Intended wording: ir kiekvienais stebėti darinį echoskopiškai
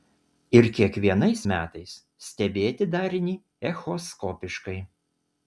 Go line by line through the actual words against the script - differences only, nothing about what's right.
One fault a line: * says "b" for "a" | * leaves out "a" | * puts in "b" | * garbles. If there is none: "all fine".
* puts in "metais"